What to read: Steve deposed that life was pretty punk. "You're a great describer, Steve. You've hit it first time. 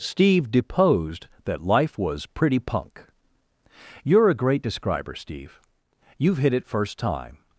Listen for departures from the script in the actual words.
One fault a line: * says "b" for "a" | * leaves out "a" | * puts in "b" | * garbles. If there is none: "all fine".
all fine